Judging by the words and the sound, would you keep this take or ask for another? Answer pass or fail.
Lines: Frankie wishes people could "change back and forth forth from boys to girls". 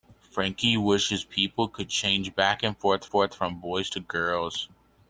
pass